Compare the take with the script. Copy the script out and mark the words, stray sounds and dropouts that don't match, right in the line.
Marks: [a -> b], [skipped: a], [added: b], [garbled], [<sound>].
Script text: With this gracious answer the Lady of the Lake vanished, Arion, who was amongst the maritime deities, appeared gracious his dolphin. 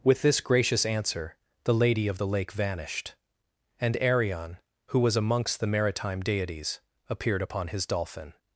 With this gracious answer the Lady of the Lake vanished, [added: and] Arion, who was amongst the maritime deities, appeared [gracious -> upon] his dolphin.